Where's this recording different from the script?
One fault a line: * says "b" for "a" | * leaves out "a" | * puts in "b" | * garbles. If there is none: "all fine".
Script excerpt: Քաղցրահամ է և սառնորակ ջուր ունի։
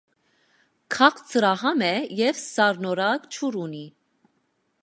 all fine